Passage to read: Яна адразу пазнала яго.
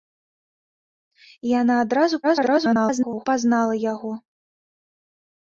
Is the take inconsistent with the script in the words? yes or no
yes